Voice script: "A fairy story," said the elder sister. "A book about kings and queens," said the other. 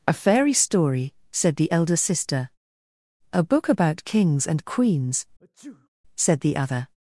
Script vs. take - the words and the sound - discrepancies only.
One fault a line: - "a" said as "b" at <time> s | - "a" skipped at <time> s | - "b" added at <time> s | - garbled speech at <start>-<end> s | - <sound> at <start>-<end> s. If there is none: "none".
- sneeze at 5.4-5.9 s